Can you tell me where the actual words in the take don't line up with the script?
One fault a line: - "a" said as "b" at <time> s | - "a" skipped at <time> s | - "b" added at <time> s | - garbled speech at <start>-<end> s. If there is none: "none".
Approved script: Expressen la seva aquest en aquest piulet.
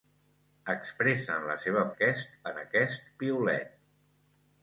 none